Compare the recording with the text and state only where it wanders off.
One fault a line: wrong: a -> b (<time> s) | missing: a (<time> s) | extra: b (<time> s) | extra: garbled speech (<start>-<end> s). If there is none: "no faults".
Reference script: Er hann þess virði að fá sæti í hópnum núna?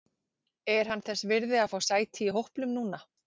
no faults